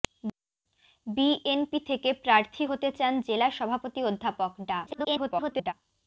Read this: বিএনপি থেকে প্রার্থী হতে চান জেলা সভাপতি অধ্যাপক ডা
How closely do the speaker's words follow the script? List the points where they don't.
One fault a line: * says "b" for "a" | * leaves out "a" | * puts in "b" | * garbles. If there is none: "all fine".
* garbles